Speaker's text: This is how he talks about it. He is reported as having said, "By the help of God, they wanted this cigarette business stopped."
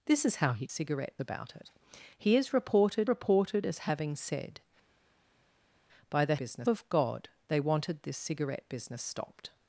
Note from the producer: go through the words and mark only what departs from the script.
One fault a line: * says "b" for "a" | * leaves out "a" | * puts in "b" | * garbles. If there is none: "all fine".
* says "cigarette" for "talks"
* puts in "reported"
* says "business" for "help"